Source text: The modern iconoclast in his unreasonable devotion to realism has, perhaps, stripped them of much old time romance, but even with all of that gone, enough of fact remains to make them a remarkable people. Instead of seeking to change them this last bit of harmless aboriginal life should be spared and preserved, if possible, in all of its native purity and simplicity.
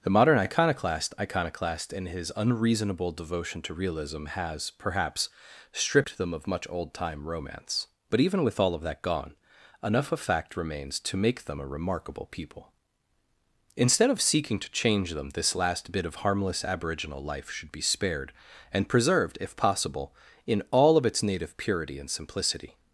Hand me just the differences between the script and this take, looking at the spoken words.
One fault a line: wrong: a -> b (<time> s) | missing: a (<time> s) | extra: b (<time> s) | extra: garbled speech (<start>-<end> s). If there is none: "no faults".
extra: iconoclast (1.2 s)